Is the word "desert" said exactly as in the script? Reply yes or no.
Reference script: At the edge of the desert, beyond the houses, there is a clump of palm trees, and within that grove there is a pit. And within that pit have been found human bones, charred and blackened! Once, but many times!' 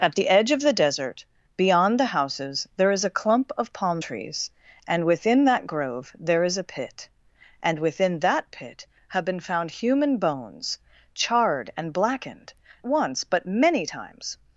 yes